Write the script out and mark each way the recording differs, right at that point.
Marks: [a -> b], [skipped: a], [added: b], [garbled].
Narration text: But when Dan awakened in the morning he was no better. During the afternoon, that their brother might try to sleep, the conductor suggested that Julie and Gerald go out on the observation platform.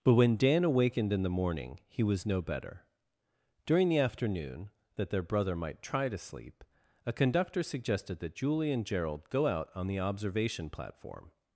But when Dan awakened in the morning he was no better. During the afternoon, that their brother might try to sleep, [the -> a] conductor suggested that Julie and Gerald go out on the observation platform.